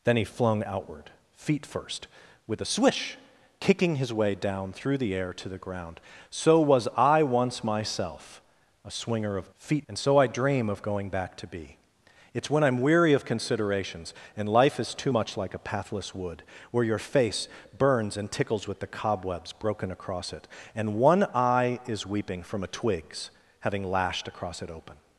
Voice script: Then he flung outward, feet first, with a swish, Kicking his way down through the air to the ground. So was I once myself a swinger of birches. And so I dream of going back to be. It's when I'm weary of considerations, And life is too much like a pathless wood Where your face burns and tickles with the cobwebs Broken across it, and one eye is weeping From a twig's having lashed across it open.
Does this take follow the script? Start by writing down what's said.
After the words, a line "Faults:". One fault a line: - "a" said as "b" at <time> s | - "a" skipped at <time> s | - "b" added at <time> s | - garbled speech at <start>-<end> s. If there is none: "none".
Then he flung outward, feet first, with a swish, Kicking his way down through the air to the ground. So was I once myself a swinger of feet. And so I dream of going back to be. It's when I'm weary of considerations, And life is too much like a pathless wood Where your face burns and tickles with the cobwebs Broken across it, and one eye is weeping From a twig's having lashed across it open.
Faults:
- "birches" said as "feet" at 9.6 s